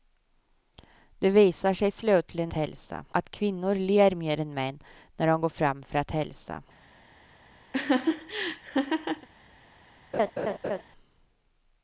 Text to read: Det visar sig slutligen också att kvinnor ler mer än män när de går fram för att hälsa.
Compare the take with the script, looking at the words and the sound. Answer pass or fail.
fail